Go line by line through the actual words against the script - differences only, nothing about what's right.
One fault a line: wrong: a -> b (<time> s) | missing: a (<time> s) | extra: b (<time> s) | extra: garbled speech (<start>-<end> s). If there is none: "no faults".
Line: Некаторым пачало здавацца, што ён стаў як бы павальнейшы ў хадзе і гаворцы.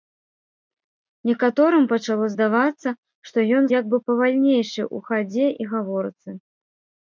missing: стаў (3.6 s)